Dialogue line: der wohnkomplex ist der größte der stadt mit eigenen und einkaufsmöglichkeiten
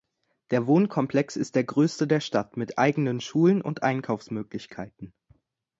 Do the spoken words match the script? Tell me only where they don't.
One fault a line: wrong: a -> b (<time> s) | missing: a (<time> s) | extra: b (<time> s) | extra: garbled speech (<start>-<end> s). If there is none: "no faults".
extra: schulen (3.2 s)